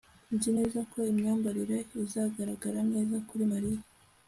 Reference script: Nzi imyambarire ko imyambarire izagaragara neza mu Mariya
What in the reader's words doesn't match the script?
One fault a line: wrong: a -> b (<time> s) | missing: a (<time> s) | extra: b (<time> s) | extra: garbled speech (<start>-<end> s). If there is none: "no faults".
wrong: imyambarire -> neza (0.5 s)
wrong: mu -> kuri (3.3 s)